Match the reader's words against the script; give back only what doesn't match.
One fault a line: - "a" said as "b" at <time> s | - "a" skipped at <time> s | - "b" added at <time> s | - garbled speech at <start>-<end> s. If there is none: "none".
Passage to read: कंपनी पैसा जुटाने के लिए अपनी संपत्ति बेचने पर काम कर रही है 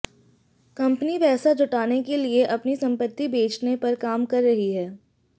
none